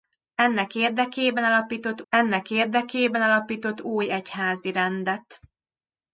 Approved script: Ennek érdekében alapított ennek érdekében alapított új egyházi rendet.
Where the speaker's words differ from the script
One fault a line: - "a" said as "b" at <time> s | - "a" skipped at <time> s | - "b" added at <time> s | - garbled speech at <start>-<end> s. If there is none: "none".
none